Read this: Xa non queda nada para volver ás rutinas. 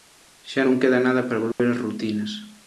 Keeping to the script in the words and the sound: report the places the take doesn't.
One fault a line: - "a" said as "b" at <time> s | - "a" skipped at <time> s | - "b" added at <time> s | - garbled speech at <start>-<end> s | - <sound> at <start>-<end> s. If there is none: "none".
- dropout at 1.5-1.6 s